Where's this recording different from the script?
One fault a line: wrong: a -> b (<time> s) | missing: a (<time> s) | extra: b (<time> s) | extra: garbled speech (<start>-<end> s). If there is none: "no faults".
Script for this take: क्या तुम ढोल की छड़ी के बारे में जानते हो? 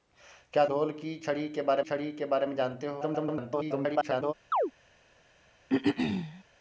missing: तुम (0.7 s)
extra: छड़ी के बारे (1.8 s)
extra: garbled speech (3.0-4.3 s)